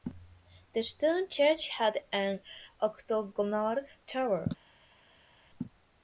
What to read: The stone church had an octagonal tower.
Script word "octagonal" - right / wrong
right